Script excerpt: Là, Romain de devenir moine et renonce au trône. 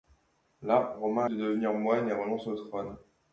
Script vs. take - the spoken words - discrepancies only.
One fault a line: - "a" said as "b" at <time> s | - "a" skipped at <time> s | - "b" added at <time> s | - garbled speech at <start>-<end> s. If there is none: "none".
none